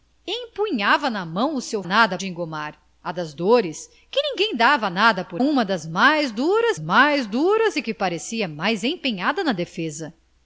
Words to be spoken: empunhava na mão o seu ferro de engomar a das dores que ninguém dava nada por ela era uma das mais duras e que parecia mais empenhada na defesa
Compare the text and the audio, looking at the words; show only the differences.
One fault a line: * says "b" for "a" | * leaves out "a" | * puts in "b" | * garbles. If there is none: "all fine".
* says "nada" for "ferro"
* says "uma das mais duras" for "ela era uma das"